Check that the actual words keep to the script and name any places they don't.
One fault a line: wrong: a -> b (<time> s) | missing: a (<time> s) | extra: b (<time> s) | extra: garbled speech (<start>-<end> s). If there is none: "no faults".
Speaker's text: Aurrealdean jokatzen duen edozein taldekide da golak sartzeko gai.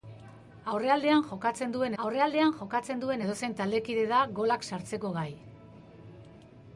extra: aurrealdean jokatzen duen (2.0 s)